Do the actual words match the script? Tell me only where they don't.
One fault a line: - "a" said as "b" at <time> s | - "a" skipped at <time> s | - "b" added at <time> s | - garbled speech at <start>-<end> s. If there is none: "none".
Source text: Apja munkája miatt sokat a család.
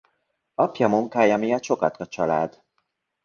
none